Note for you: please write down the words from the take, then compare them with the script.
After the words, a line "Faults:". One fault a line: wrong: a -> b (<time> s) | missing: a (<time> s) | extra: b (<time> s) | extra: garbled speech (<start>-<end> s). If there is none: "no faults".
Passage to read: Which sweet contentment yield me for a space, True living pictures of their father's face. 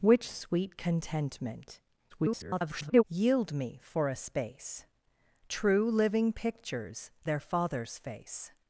Which sweet contentment [garbled] yield me for a space, True living pictures their father's face.
Faults:
extra: garbled speech (2.1-3.0 s)
missing: of (7.1 s)